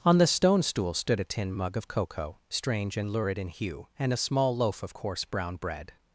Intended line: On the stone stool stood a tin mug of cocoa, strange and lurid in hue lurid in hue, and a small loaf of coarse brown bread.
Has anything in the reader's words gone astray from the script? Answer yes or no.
yes